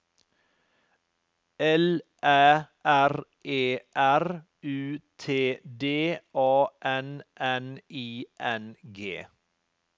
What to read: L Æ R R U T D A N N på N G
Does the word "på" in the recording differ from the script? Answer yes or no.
yes